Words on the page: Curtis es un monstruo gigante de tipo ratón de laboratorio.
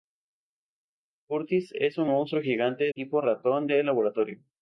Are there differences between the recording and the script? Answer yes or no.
yes